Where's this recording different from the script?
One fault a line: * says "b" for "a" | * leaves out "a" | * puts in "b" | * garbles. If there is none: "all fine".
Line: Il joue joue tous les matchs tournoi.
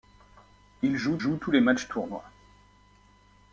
all fine